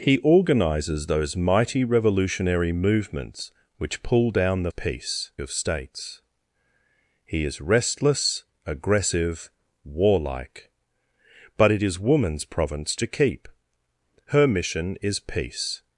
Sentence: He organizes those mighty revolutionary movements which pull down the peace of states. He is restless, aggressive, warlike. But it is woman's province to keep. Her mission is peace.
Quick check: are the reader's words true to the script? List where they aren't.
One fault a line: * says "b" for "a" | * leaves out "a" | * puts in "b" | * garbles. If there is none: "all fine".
all fine